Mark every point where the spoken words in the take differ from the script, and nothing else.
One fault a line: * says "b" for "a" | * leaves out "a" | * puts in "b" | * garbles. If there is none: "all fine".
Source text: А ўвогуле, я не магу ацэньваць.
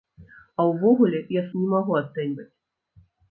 all fine